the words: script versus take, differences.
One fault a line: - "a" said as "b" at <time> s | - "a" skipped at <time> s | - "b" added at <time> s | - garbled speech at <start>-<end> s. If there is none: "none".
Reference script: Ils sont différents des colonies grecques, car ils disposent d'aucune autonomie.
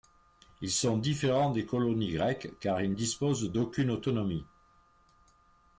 none